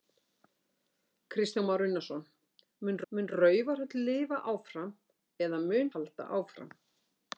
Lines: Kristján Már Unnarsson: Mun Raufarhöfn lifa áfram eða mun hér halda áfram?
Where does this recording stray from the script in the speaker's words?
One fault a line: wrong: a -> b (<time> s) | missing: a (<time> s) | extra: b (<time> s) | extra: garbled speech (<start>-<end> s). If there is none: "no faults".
extra: Mun (3.1 s)
missing: hér (5.9 s)